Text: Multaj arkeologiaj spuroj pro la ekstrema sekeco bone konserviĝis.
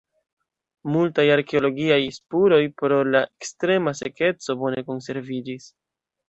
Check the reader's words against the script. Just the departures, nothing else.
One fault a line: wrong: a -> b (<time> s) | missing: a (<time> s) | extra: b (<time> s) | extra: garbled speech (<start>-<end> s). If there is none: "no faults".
no faults